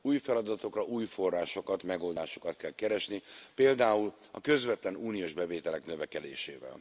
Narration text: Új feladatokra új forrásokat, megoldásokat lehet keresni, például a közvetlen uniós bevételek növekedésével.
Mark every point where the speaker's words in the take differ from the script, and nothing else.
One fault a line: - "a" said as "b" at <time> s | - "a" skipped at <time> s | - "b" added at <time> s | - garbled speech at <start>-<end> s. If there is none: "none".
- "lehet" said as "kell" at 2.6 s